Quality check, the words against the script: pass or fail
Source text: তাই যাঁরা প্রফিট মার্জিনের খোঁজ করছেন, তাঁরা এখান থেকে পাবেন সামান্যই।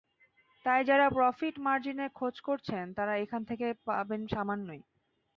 pass